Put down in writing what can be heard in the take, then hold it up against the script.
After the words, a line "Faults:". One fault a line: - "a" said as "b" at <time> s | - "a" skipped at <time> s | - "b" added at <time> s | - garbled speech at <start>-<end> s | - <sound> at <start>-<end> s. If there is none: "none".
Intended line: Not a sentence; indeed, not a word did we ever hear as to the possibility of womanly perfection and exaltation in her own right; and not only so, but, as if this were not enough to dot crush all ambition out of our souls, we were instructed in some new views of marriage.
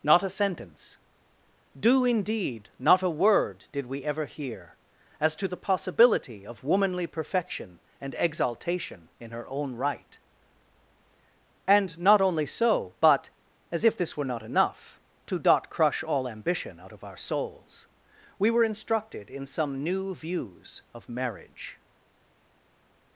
Not a sentence; do indeed, not a word did we ever hear as to the possibility of womanly perfection and exaltation in her own right; and not only so, but, as if this were not enough to dot crush all ambition out of our souls, we were instructed in some new views of marriage.
Faults:
- "do" added at 1.8 s